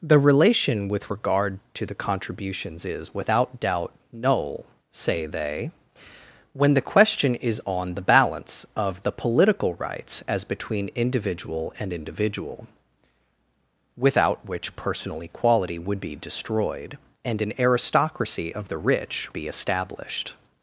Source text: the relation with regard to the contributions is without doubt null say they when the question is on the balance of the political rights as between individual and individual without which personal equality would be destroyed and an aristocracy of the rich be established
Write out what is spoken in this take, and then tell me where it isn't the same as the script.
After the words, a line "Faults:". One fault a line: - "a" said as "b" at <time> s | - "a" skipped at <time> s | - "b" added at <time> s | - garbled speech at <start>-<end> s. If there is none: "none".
the relation with regard to the contributions is without doubt null say they when the question is on the balance of the political rights as between individual and individual without which personal equality would be destroyed and an aristocracy of the rich be established
Faults:
none